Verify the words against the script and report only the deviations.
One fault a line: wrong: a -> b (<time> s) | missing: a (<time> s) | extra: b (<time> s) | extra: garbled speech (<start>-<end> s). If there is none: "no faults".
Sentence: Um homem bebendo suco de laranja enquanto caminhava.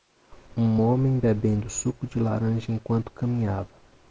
no faults